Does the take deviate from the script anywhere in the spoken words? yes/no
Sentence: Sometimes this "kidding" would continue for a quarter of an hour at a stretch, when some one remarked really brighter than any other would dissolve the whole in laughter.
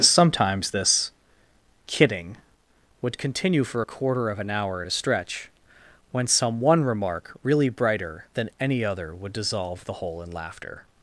yes